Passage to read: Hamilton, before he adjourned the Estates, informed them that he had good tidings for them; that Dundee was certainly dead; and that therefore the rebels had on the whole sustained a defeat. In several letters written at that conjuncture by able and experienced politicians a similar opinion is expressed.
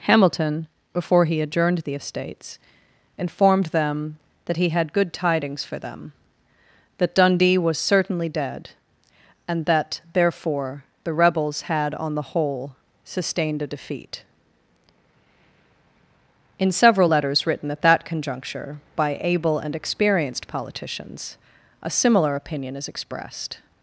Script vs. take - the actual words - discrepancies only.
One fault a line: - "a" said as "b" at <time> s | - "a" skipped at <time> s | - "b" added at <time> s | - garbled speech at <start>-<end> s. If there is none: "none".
none